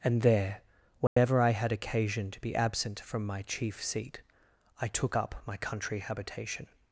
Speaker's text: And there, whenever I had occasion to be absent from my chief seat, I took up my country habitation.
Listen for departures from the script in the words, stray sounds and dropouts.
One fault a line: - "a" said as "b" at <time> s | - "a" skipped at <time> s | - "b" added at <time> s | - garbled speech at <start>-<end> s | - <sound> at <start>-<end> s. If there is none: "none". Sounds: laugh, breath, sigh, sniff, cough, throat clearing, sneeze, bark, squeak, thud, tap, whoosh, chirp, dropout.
- dropout at 1.1-1.2 s